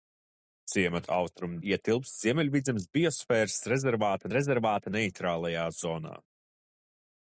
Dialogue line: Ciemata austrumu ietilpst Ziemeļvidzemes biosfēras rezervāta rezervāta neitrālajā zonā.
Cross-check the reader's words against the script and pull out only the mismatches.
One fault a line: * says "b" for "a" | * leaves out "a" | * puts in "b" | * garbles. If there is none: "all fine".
all fine